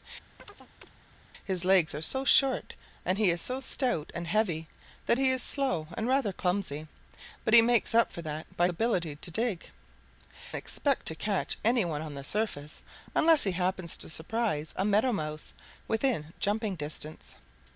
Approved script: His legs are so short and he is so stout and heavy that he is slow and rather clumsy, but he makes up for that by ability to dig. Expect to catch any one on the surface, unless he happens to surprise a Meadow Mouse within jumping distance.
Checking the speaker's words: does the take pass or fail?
pass